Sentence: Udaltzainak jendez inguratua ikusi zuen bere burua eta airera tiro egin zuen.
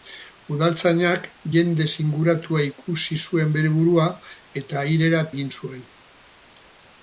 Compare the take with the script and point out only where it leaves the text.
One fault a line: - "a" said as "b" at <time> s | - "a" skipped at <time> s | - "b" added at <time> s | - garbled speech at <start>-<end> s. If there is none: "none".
- "tiro" skipped at 5.2 s